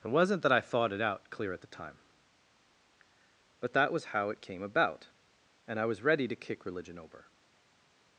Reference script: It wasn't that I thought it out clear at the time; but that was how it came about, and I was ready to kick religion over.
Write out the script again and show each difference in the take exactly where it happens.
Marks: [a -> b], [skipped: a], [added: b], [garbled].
It wasn't that I thought it out clear at the time; but that was how it came about, and I was ready to kick religion over.